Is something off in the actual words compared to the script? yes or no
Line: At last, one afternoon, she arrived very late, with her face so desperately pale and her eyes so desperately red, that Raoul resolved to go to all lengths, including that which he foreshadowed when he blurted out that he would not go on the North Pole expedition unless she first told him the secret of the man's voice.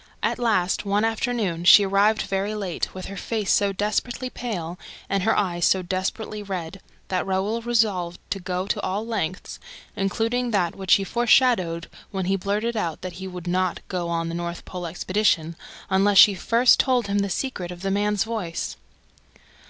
no